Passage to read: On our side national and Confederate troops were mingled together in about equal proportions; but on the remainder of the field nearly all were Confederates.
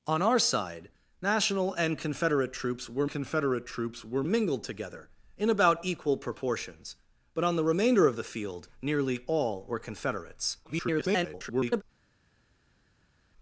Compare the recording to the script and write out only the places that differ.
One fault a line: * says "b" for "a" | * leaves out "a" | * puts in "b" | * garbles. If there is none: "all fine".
* puts in "Confederate troops were"
* garbles